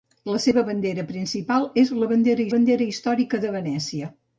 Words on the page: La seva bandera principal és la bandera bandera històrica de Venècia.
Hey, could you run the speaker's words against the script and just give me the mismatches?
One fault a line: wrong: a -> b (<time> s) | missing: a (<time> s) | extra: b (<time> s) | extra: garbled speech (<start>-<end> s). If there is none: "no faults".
no faults